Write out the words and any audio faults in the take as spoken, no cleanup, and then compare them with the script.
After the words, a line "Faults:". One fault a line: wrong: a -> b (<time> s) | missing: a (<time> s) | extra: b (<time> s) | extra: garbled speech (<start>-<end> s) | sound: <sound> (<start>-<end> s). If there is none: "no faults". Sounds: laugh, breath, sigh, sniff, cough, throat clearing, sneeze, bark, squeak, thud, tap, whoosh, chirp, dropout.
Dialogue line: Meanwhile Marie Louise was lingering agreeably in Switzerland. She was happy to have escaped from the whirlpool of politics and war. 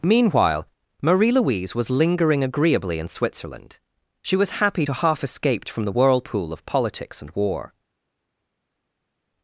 Meanwhile Marie Louise was lingering agreeably in Switzerland. She was happy to half escaped from the whirlpool of politics and war.
Faults:
wrong: have -> half (4.9 s)